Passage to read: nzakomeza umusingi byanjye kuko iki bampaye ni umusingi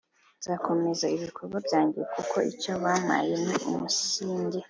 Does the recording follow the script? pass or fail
fail